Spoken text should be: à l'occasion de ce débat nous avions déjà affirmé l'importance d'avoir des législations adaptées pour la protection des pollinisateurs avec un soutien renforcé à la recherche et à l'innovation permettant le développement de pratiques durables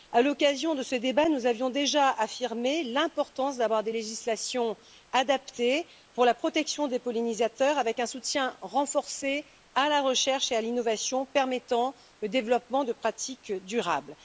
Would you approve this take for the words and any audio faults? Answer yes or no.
yes